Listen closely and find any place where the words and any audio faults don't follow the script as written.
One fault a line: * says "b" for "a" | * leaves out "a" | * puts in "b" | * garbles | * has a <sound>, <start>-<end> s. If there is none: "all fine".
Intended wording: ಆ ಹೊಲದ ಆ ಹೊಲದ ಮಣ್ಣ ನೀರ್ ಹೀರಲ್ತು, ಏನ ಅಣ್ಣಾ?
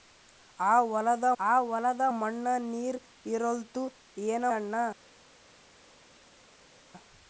all fine